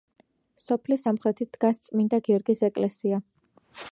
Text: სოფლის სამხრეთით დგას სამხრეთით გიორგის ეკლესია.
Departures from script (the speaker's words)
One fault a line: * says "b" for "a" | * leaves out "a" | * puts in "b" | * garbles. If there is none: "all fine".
* says "წმინდა" for "სამხრეთით"